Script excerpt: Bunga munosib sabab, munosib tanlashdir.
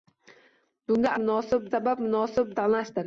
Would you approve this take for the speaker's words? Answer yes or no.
yes